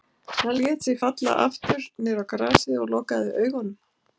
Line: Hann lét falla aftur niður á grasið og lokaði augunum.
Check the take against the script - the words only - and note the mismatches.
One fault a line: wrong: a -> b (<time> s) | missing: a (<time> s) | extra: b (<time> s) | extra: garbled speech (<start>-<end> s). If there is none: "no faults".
extra: sig (0.8 s)